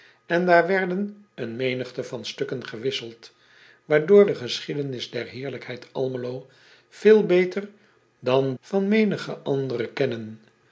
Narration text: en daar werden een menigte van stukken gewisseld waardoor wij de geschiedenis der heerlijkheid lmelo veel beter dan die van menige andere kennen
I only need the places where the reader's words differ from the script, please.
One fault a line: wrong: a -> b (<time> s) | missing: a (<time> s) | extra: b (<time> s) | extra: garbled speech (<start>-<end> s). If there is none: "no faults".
missing: wij (4.3 s)
missing: die (8.5 s)